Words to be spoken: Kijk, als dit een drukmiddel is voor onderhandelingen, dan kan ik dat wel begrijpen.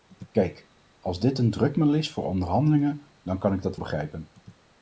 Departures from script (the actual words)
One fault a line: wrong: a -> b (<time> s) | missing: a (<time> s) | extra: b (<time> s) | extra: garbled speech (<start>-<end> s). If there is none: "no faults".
missing: wel (3.8 s)